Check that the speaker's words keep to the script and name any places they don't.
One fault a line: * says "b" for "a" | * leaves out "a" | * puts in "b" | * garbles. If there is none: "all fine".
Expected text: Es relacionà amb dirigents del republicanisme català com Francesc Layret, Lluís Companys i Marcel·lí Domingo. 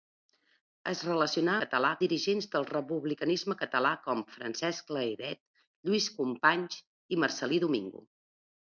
* says "català" for "amb"